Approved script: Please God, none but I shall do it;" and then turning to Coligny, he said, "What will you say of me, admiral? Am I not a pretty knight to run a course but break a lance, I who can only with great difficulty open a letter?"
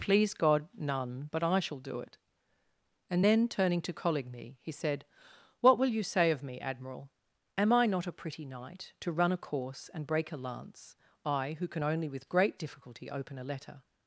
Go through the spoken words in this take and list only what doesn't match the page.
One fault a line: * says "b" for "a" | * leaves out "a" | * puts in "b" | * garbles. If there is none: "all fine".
* says "and" for "but"